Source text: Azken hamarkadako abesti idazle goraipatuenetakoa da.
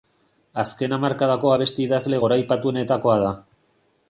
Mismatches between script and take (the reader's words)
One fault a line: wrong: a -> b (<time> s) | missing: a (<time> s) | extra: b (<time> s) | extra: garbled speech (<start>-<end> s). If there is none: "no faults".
no faults